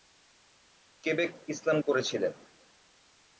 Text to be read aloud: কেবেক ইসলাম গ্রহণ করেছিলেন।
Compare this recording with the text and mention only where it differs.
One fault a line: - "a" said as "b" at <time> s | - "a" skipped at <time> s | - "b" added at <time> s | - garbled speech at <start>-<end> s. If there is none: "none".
- "গ্রহণ" skipped at 1.8 s